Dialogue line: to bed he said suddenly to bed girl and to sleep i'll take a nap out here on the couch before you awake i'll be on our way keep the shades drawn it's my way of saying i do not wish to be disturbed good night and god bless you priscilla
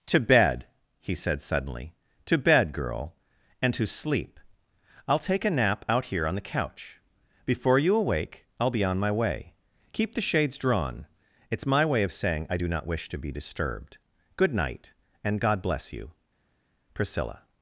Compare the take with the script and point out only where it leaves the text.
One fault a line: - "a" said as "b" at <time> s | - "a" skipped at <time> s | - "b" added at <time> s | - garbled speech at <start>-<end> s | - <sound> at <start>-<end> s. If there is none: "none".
- "our" said as "my" at 9.0 s